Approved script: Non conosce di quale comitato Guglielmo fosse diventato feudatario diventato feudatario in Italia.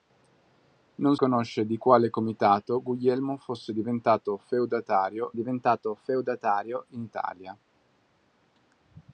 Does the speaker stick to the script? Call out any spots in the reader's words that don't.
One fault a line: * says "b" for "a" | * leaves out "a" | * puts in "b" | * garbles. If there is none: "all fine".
all fine